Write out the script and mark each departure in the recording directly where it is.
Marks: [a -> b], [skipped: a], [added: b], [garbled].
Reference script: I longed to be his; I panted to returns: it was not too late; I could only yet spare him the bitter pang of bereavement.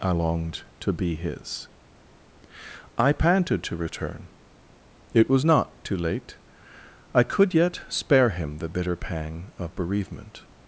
I longed to be his; I panted to [returns: -> return] it was not too late; I could [skipped: only] yet spare him the bitter pang of bereavement.